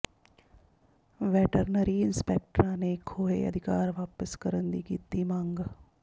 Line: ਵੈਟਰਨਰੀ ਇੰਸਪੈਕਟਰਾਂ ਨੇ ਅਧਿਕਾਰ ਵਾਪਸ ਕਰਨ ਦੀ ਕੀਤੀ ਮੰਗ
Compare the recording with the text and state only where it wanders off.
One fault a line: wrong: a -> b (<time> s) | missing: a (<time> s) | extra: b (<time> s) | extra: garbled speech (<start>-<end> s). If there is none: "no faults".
extra: ਖੋਹੇ (3.1 s)